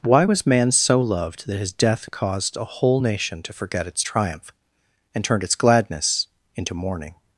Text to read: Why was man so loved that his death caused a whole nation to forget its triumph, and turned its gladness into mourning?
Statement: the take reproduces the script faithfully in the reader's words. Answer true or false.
true